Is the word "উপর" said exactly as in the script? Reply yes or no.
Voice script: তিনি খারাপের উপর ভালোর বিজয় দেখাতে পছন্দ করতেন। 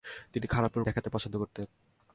no